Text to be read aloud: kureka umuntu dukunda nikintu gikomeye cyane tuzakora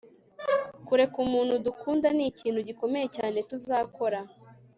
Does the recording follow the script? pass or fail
pass